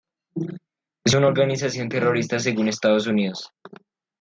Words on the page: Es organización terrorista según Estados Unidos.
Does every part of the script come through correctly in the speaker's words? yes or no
no